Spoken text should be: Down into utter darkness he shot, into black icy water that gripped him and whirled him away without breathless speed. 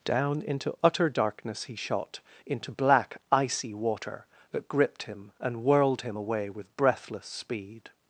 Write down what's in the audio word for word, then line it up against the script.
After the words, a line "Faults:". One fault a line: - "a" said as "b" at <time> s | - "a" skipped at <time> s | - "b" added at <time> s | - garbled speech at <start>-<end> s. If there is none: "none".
Down into utter darkness he shot, into black icy water that gripped him and whirled him away with breathless speed.
Faults:
- "without" said as "with" at 6.5 s